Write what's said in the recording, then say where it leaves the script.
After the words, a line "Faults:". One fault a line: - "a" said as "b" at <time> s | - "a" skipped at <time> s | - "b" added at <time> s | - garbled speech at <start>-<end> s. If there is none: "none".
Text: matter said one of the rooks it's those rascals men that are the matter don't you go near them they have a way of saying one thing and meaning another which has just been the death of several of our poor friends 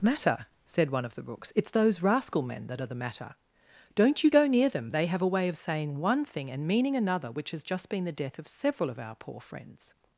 matter said one of the rooks it's those rascal men that are the matter don't you go near them they have a way of saying one thing and meaning another which has just been the death of several of our poor friends
Faults:
- "rascals" said as "rascal" at 2.0 s